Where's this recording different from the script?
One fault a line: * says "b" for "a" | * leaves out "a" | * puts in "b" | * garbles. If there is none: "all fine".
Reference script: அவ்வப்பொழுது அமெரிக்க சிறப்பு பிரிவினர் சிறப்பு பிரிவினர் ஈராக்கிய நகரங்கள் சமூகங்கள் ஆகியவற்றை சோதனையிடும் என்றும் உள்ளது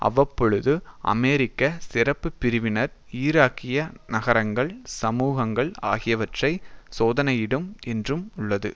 * leaves out "சிறப்பு பிரிவினர்"